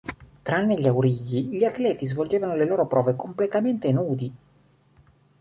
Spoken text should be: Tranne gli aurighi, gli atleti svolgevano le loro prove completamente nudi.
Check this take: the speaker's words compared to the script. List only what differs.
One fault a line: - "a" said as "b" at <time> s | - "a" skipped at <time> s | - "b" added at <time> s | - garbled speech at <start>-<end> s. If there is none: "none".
none